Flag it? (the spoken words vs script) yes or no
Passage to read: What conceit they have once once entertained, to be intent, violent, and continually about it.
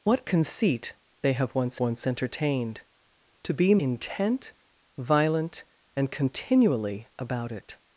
no